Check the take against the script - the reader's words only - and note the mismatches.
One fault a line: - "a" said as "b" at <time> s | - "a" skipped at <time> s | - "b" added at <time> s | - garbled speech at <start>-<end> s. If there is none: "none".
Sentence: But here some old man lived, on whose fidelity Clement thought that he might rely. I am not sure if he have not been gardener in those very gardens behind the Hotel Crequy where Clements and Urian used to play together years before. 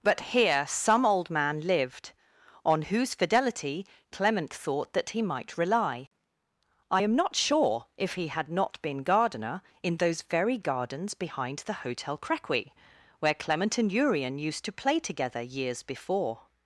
- "have" said as "had" at 8.3 s
- "Clements" said as "Clement" at 13.3 s